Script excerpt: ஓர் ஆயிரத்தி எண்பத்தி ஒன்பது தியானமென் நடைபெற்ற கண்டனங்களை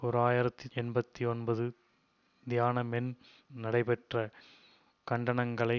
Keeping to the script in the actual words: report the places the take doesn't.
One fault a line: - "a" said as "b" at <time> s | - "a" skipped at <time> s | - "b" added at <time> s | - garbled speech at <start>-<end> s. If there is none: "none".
none